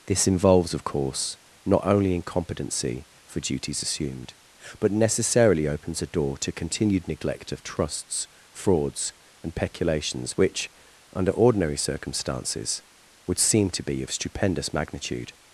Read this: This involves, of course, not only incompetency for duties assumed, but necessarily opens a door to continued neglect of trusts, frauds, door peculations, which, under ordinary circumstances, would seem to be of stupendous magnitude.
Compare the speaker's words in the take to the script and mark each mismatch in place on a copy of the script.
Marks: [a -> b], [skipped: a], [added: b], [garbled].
This involves, of course, not only incompetency for duties assumed, but necessarily opens a door to continued neglect of trusts, frauds, [door -> and] peculations, which, under ordinary circumstances, would seem to be of stupendous magnitude.